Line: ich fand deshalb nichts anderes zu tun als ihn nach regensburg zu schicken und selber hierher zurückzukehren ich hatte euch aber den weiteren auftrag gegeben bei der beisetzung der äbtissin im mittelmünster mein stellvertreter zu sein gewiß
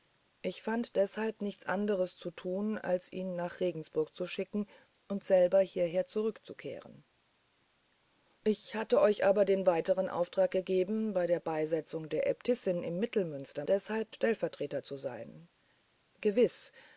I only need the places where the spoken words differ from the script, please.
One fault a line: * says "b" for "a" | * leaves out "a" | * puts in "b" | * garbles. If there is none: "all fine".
* says "deshalb" for "mein"